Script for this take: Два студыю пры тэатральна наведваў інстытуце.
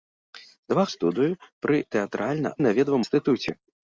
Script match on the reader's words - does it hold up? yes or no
yes